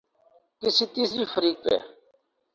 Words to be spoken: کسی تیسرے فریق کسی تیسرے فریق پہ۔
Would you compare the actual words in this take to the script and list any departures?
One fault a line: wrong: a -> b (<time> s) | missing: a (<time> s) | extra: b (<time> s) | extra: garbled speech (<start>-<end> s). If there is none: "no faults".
missing: کسی تیسرے فریق (1.6 s)